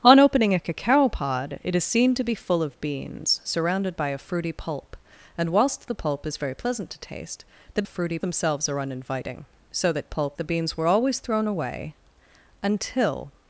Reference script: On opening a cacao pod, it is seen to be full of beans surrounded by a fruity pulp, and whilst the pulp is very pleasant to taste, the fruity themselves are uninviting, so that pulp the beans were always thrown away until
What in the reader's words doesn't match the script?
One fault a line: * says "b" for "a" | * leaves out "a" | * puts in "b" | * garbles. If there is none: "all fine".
all fine